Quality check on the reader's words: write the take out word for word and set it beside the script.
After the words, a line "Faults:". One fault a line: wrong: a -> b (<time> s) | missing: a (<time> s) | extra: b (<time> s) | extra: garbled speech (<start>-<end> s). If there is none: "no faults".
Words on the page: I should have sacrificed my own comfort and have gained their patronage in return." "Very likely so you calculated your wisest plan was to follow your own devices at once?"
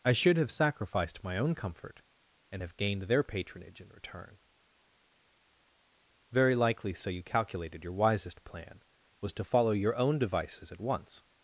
I should have sacrificed my own comfort and have gained their patronage in return." "Very likely so you calculated your wisest plan was to follow your own devices at once?"
Faults:
no faults